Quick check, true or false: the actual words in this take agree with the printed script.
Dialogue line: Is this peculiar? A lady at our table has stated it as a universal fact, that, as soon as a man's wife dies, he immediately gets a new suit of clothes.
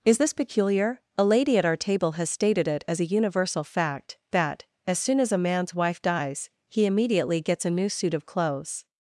true